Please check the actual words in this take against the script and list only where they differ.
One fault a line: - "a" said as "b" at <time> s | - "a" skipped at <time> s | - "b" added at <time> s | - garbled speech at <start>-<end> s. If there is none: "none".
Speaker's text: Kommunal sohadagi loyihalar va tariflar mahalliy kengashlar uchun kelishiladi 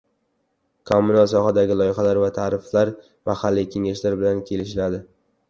- "uchun" said as "bilan" at 4.2 s